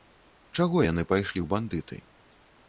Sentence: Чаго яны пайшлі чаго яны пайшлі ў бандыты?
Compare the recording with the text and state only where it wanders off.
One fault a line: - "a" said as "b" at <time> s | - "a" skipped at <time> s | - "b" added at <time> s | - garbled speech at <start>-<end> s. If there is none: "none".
- "чаго яны пайшлі" skipped at 1.4 s